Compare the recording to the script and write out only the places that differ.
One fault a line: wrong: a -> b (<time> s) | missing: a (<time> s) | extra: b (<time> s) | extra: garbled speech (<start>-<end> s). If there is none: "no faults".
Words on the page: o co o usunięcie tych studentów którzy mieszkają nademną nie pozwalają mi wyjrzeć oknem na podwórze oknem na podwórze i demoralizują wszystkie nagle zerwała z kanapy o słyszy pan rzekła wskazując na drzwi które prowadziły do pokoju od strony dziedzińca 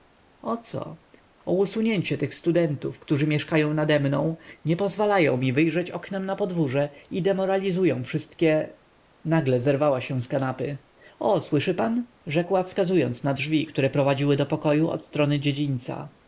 missing: oknem na podwórze (6.9 s)
extra: się (10.0 s)